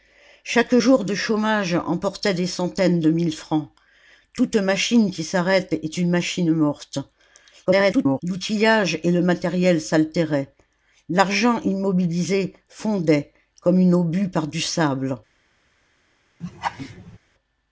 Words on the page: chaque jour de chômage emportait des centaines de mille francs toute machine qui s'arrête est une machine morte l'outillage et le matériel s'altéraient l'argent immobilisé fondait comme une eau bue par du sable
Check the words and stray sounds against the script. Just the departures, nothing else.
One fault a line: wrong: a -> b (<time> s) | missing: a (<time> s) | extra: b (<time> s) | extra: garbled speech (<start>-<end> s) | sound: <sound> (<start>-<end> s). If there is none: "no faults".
extra: garbled speech (7.7-8.2 s)
sound: laugh (16.4-17.2 s)